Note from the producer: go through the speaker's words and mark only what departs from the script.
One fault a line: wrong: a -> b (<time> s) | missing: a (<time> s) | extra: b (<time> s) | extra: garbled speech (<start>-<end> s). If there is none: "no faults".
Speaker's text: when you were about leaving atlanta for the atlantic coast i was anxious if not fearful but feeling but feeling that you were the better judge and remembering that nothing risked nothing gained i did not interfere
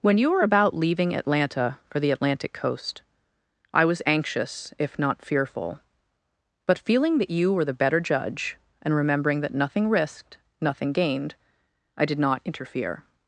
missing: but feeling (7.2 s)